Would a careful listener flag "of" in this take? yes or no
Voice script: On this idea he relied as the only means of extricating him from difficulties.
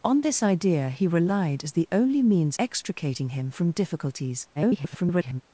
yes